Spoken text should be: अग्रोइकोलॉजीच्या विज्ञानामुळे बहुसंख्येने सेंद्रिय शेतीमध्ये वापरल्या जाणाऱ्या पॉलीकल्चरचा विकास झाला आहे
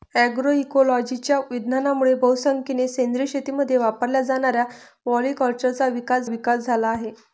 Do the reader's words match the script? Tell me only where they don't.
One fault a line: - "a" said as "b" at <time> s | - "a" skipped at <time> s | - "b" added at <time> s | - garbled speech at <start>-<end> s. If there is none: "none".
- "विकास" added at 6.2 s